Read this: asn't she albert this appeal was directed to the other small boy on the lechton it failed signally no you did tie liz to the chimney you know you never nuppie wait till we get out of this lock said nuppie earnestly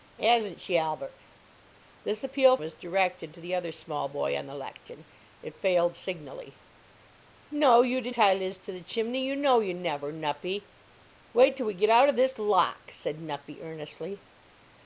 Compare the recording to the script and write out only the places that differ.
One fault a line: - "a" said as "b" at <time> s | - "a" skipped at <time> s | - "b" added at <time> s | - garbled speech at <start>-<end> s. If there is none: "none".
none